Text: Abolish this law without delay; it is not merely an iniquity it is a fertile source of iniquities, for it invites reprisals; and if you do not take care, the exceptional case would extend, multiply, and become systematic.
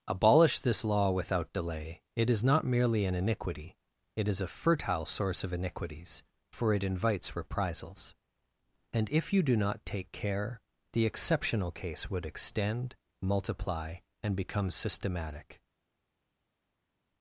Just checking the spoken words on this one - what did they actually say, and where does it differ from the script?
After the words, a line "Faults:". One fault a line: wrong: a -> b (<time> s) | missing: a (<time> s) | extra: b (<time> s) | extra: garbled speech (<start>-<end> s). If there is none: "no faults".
Abolish this law without delay; it is not merely an iniquity it is a fertile source of iniquities, for it invites reprisals; and if you do not take care, the exceptional case would extend, multiply, and become systematic.
Faults:
no faults